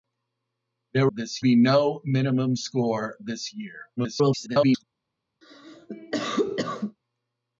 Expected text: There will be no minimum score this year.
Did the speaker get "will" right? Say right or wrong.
wrong